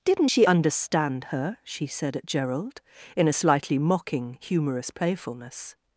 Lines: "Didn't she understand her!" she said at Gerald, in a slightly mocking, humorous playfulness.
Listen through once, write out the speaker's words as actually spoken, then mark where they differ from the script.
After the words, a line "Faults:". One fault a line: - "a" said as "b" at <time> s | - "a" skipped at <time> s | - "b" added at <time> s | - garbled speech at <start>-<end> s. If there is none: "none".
"Didn't she understand her!" she said at Gerald, in a slightly mocking, humorous playfulness.
Faults:
none